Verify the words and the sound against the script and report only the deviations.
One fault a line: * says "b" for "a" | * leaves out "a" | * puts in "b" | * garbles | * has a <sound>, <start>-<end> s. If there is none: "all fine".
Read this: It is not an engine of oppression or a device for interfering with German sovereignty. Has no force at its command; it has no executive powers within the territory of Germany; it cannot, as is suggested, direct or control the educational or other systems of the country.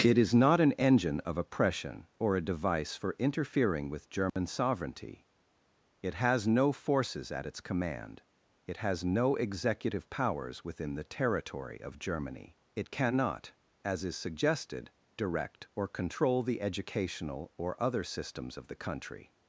* has a dropout, 4.3-4.4 s
* puts in "It"
* says "forces" for "force"